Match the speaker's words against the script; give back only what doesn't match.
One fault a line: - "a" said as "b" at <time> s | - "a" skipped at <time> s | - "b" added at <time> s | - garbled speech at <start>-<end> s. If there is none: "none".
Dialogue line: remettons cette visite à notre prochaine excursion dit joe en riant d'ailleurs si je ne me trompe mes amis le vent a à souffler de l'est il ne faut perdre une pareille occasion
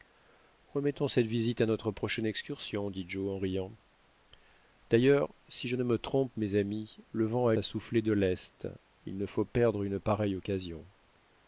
none